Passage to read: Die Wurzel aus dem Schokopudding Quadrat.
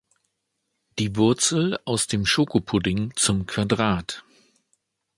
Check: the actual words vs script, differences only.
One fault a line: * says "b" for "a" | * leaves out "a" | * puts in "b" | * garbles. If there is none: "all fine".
* puts in "zum"